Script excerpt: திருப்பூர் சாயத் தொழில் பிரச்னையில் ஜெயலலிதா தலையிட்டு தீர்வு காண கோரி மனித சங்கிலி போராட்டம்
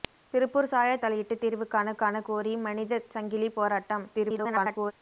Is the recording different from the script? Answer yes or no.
yes